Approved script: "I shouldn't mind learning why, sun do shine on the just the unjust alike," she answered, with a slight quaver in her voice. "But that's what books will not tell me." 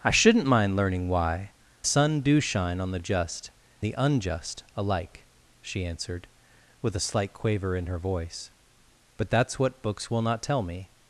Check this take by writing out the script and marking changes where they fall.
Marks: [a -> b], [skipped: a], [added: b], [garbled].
"I shouldn't mind learning why, sun do shine on the just the unjust alike," she answered, with a slight quaver in her voice. "But that's what books will not tell me."